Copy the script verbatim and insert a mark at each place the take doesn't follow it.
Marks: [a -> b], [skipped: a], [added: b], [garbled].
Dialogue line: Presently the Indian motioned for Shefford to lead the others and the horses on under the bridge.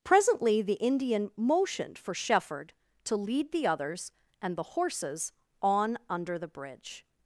Presently the Indian motioned for Shefford to lead the others and the horses on under the bridge.